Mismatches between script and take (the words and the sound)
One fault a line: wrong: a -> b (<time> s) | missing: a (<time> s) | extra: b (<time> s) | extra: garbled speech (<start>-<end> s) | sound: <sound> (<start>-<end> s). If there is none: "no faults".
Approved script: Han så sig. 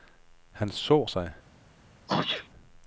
sound: sneeze (2.1-2.5 s)